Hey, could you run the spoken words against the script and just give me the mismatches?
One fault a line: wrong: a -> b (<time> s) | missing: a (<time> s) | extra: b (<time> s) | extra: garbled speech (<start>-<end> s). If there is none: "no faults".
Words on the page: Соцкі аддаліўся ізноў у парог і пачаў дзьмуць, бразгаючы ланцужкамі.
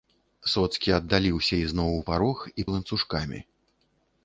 missing: пачаў дзьмуць бразгаючы (2.7 s)